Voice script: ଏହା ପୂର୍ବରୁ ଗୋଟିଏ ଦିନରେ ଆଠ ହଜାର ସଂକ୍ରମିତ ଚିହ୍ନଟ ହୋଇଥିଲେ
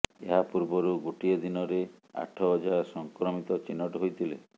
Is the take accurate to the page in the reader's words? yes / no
yes